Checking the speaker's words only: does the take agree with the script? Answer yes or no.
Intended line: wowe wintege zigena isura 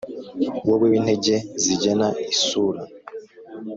yes